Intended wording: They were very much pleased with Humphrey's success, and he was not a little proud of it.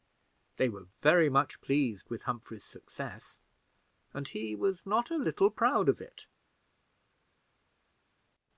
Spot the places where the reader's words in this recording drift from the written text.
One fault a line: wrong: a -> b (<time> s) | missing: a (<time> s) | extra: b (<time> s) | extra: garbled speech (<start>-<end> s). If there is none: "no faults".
no faults